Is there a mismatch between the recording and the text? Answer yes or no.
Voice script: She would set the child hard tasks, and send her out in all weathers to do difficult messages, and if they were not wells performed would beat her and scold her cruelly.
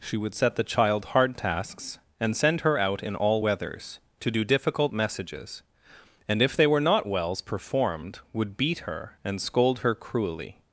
no